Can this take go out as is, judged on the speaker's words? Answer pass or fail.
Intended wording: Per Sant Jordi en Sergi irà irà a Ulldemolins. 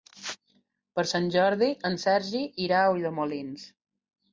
fail